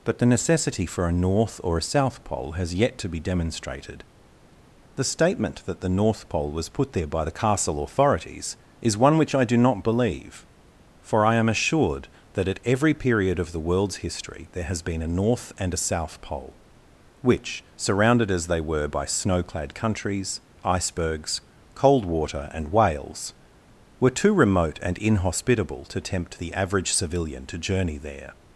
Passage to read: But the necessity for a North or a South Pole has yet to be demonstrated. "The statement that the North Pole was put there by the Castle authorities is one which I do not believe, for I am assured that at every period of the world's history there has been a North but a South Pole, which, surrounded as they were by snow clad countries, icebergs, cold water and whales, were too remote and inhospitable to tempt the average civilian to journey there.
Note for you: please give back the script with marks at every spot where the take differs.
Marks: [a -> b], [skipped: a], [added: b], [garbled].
But the necessity for a North or a South Pole has yet to be demonstrated. "The statement that the North Pole was put there by the Castle authorities is one which I do not believe, for I am assured that at every period of the world's history there has been a North [but -> and] a South Pole, which, surrounded as they were by snow clad countries, icebergs, cold water and whales, were too remote and inhospitable to tempt the average civilian to journey there.